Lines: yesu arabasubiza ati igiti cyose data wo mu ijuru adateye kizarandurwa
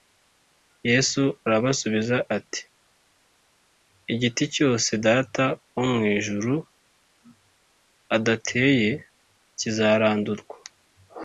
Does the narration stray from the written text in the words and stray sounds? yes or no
no